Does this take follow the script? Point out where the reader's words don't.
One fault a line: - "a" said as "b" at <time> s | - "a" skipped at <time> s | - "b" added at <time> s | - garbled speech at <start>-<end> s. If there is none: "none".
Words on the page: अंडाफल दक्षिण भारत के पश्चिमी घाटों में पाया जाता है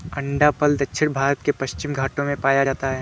none